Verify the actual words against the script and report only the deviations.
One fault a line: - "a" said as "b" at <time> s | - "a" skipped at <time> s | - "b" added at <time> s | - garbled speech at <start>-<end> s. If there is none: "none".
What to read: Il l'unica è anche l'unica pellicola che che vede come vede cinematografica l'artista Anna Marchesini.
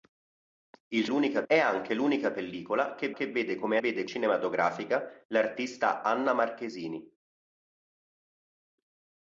none